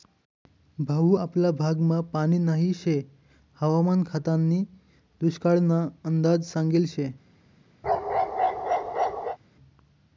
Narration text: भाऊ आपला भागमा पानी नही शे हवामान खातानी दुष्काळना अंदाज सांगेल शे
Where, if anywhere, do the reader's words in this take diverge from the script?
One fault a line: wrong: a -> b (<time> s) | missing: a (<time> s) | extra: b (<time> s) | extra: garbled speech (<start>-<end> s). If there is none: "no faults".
no faults